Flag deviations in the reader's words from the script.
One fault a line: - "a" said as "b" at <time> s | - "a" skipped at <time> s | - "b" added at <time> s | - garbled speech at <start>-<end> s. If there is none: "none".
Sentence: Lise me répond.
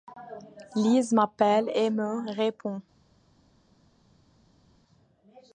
- "m'appelle et" added at 1.1 s